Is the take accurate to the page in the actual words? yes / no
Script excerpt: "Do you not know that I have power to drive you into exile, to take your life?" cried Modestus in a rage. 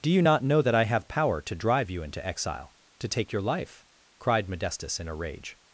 yes